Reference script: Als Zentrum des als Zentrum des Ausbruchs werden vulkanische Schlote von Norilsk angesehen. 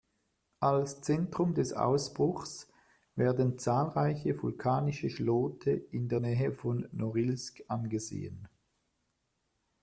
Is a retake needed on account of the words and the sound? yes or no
yes